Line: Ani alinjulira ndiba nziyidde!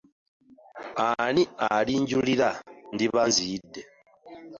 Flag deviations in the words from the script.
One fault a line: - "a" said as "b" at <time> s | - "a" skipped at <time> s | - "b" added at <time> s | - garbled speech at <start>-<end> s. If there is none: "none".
none